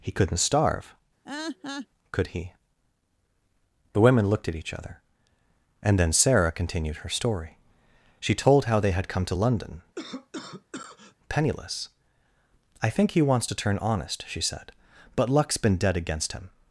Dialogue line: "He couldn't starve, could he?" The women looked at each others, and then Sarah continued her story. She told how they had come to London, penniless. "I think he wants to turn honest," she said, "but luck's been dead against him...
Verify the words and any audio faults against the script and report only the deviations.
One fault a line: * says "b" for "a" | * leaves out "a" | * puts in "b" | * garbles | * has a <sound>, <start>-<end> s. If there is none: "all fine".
* has a laugh, 1.2-1.9 s
* says "other" for "others"
* has a cough, 10.0-11.2 s